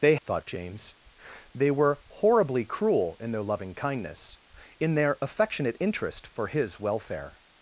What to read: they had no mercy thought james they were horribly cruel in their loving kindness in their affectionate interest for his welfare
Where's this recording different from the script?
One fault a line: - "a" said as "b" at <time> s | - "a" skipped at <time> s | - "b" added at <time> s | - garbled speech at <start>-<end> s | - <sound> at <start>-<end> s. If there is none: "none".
- "had no mercy" skipped at 0.1 s